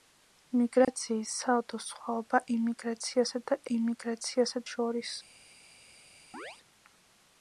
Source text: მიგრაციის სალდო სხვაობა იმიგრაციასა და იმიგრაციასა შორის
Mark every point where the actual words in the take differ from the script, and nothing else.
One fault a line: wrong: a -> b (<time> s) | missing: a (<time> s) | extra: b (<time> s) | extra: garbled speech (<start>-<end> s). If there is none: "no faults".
no faults